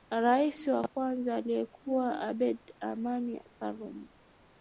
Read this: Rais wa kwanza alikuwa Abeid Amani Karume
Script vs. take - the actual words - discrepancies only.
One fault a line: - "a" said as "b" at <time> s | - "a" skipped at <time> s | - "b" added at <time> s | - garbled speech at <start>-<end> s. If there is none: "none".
none